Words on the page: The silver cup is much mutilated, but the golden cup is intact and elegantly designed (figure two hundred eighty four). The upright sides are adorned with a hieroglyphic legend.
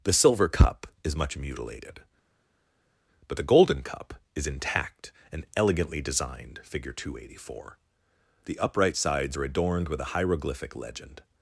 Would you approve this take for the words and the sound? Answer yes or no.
yes